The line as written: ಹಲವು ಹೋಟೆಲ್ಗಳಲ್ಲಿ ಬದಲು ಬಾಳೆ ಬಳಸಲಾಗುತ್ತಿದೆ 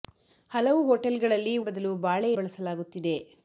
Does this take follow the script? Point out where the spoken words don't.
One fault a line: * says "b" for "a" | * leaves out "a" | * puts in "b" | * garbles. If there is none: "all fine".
all fine